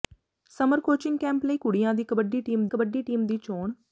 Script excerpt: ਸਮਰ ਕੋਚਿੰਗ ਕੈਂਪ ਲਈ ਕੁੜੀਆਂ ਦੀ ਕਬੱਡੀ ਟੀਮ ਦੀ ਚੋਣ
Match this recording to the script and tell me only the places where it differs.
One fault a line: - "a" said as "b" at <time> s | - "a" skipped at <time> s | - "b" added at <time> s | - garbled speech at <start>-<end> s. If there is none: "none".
- "ਕਬੱਡੀ ਟੀਮ" added at 2.7 s